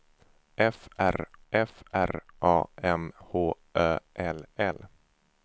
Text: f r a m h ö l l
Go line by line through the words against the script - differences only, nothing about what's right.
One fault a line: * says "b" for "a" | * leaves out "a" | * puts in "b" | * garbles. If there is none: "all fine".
* puts in "f r"